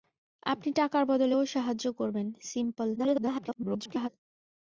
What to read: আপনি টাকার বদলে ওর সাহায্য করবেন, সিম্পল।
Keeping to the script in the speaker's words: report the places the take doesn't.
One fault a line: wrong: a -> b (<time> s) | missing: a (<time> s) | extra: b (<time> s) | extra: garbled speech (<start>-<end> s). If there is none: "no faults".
extra: garbled speech (3.0-4.1 s)